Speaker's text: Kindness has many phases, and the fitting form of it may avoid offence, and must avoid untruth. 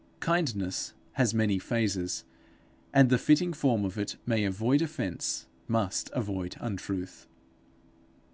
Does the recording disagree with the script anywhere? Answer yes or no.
yes